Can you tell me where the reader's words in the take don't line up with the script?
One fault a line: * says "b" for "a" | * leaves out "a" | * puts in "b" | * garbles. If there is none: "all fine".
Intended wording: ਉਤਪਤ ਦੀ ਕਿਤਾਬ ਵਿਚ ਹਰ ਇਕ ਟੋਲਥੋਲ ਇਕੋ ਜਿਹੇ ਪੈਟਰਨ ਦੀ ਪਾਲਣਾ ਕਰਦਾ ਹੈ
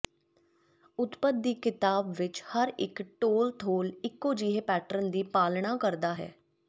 all fine